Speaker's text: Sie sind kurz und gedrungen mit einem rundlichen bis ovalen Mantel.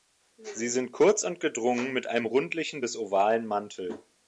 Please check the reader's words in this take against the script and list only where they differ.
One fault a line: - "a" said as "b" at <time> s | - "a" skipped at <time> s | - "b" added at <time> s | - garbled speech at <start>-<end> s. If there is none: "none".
none